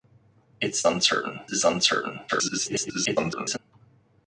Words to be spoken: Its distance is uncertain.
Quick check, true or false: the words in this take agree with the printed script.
false